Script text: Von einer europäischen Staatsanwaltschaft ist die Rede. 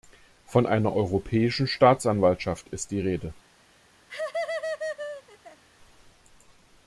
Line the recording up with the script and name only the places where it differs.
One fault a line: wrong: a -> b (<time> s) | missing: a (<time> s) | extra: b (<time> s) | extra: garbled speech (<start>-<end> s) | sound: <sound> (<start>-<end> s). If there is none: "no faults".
sound: laugh (4.1-5.6 s)